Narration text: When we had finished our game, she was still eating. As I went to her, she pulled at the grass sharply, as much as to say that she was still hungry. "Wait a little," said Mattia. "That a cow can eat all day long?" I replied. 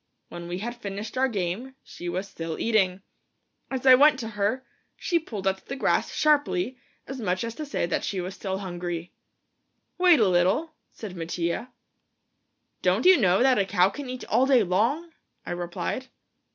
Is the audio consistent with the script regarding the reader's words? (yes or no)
no